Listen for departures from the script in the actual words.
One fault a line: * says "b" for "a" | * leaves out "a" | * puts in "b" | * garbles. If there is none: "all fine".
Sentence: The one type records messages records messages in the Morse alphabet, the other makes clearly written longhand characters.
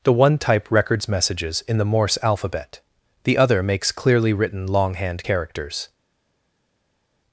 * leaves out "records messages"